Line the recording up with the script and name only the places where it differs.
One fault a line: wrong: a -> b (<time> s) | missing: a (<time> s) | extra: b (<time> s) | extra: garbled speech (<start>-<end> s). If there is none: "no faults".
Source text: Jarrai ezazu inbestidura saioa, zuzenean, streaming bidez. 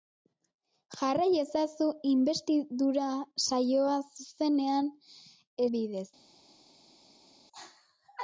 missing: streaming (4.9 s)